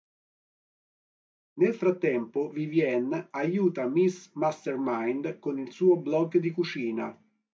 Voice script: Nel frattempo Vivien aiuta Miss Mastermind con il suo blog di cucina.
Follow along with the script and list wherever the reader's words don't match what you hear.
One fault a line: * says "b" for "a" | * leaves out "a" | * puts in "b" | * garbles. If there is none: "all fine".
all fine